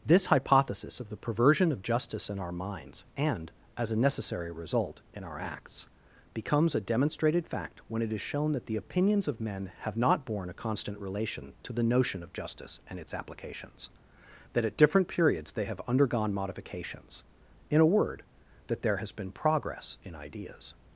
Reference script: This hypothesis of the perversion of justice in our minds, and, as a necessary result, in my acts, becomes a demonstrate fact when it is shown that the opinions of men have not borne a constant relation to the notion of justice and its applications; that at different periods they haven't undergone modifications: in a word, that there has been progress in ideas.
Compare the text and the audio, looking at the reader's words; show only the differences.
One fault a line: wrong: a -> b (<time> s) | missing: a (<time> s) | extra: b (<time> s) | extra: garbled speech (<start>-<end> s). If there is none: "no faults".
wrong: my -> our (5.2 s)
wrong: demonstrate -> demonstrated (6.8 s)
wrong: haven't -> have (15.7 s)